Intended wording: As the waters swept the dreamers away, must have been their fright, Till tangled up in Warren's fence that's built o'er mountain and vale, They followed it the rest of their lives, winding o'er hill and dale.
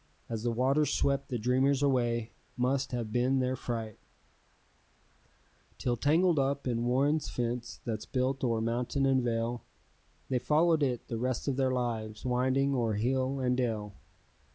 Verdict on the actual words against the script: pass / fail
pass